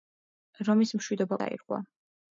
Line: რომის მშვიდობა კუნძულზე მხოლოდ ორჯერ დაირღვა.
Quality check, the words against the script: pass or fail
fail